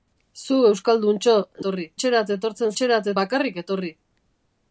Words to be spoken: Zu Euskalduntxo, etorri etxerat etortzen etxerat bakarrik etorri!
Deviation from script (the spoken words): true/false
false